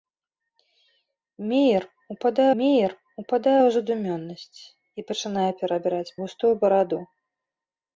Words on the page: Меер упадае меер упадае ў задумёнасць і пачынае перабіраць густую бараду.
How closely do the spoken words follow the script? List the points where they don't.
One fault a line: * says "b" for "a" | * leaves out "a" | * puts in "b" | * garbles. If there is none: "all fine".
all fine